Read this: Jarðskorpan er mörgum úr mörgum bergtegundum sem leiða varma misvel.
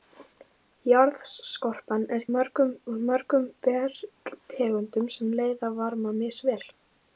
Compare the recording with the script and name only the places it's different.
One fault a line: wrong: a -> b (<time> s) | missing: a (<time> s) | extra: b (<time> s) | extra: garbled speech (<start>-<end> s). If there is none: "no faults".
no faults